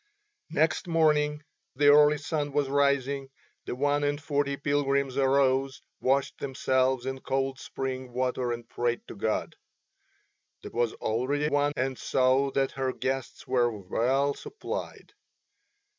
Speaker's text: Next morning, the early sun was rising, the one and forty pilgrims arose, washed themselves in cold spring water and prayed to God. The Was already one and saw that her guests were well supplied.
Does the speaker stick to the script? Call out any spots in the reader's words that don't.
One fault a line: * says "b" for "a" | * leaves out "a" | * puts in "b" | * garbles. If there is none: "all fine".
all fine